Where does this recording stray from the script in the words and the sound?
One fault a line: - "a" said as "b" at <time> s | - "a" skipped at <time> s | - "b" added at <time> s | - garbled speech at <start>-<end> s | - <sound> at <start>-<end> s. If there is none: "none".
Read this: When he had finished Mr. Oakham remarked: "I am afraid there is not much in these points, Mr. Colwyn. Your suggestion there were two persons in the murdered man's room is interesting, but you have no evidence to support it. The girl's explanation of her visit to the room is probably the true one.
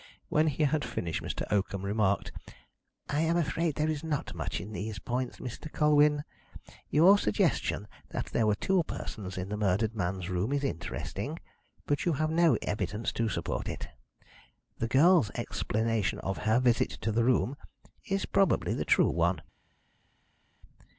- "that" added at 8.1 s